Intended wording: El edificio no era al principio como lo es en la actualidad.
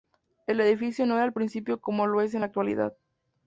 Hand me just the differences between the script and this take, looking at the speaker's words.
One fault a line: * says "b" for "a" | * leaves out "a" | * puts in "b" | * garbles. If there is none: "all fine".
all fine